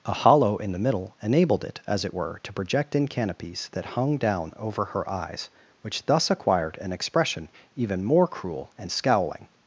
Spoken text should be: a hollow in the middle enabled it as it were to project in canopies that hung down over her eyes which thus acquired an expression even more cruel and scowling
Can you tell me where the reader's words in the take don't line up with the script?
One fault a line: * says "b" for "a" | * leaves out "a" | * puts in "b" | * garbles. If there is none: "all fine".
all fine